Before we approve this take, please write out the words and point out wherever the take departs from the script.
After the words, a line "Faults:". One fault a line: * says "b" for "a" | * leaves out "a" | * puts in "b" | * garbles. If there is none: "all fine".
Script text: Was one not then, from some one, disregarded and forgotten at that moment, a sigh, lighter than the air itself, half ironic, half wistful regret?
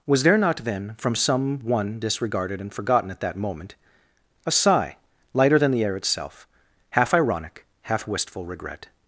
Was there not then, from some one, disregarded and forgotten at that moment, a sigh, lighter than the air itself, half ironic, half wistful regret?
Faults:
* says "there" for "one"